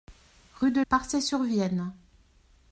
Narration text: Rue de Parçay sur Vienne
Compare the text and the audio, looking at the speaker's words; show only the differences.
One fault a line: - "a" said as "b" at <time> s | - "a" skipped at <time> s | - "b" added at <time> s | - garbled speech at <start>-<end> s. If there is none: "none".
none